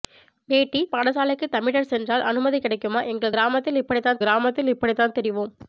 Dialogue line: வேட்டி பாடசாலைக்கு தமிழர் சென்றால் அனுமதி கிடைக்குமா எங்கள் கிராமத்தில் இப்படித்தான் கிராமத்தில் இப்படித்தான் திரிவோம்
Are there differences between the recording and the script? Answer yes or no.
no